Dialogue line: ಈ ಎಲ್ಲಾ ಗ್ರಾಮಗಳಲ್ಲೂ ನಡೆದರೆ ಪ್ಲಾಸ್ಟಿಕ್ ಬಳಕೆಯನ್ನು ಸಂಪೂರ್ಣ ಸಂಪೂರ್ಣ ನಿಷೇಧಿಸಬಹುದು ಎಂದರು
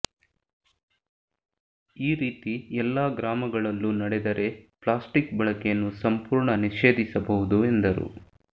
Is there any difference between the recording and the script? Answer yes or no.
yes